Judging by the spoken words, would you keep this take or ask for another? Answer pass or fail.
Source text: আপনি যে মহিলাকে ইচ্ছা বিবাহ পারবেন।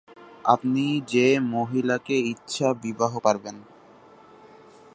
pass